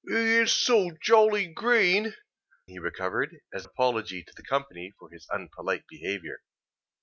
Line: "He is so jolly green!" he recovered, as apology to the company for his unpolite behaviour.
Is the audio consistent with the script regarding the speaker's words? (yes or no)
yes